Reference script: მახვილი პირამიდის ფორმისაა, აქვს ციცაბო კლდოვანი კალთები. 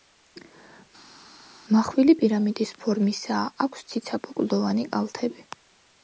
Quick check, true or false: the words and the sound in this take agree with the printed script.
true